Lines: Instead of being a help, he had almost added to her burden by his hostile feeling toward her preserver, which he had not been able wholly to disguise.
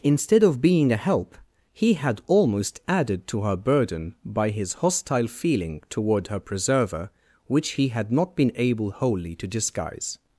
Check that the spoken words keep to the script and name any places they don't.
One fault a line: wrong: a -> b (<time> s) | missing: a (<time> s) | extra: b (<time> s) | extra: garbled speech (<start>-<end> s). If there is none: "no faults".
no faults